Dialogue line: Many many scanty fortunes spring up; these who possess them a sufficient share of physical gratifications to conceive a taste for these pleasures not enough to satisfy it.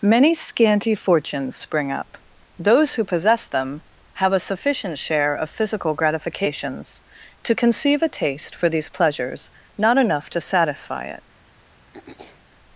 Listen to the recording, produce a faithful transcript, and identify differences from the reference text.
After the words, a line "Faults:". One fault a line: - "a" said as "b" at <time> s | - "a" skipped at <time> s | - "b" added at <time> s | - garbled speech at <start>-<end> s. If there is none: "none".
Many scanty fortunes spring up; those who possess them have a sufficient share of physical gratifications to conceive a taste for these pleasures not enough to satisfy it.
Faults:
- "many" skipped at 0.3 s
- "these" said as "those" at 2.6 s
- "have" added at 4.1 s